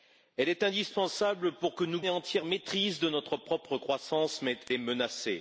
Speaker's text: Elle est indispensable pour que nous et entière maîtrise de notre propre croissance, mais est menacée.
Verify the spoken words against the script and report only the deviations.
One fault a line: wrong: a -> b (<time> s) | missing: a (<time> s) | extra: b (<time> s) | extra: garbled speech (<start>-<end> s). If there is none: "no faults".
no faults